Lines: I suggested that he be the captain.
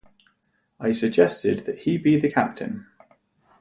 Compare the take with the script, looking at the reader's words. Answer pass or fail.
pass